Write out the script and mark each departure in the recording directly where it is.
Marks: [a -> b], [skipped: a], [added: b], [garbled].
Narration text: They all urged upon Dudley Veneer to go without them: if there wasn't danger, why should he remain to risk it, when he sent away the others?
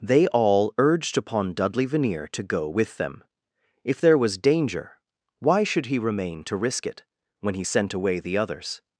They all urged upon Dudley Veneer to go [without -> with] them: if there [wasn't -> was] danger, why should he remain to risk it, when he sent away the others?